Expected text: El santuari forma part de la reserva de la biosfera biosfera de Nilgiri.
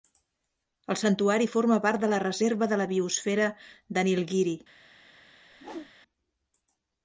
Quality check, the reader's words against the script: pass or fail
fail